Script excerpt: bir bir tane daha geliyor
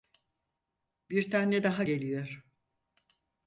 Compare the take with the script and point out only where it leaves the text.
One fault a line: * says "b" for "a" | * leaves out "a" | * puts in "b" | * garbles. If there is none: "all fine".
* leaves out "bir"